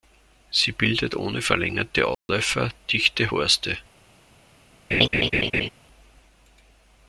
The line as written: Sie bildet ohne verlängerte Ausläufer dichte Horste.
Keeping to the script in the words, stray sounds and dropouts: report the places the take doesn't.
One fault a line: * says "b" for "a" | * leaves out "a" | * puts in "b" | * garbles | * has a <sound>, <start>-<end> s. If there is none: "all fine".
* has a dropout, 2.1-2.3 s
* has a laugh, 4.9-5.7 s